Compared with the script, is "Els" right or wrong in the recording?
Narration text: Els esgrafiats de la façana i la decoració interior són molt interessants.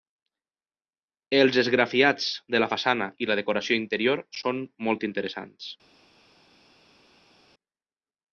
right